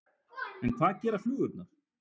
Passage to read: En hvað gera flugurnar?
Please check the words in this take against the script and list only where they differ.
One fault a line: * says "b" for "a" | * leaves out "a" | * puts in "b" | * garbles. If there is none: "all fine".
all fine